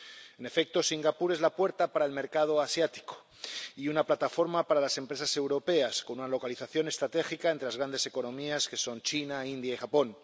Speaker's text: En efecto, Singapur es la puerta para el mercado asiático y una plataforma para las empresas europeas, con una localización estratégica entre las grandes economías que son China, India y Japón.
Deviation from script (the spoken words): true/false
false